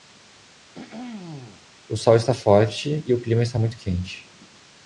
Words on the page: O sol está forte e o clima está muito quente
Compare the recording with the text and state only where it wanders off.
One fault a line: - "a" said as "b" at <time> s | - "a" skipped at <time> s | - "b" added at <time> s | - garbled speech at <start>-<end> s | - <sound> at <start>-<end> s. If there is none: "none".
- throat clearing at 0.7-1.7 s